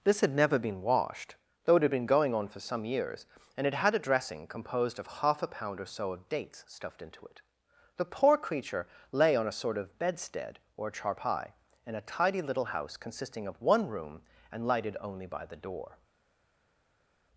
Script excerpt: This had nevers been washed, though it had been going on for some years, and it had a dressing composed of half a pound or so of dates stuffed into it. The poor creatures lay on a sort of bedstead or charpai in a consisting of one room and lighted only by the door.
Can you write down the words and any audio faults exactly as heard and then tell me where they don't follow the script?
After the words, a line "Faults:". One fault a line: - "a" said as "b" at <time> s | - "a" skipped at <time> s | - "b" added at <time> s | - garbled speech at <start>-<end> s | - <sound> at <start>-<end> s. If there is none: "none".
This had never been washed, though it had been going on for some years, and it had a dressing composed of half a pound or so of dates stuffed into it. The poor creature lay on a sort of bedstead or charpai in a tidy little house consisting of one room and lighted only by the door.
Faults:
- "nevers" said as "never" at 0.3 s
- "creatures" said as "creature" at 8.4 s
- "tidy little house" added at 12.1 s